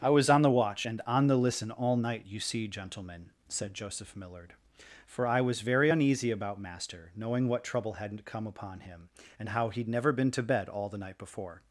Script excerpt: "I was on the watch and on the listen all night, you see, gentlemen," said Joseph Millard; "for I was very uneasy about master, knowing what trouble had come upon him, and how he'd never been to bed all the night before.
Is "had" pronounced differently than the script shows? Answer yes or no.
yes